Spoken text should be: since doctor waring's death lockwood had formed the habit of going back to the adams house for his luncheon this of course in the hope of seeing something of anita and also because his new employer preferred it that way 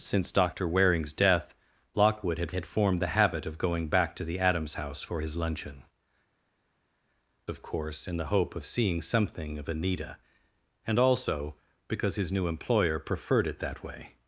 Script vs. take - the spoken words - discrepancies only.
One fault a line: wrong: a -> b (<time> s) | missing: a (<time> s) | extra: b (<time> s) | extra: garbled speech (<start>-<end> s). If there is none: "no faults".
extra: had (2.5 s)
missing: this (5.8 s)